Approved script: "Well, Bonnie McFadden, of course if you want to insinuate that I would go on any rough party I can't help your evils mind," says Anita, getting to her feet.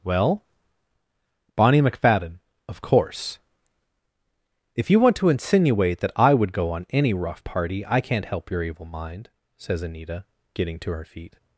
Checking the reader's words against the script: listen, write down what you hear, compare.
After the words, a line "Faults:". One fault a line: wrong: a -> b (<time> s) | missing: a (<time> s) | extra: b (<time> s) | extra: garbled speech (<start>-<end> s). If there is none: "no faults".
"Well, Bonnie McFadden, of course if you want to insinuate that I would go on any rough party I can't help your evil mind," says Anita, getting to her feet.
Faults:
wrong: evils -> evil (8.6 s)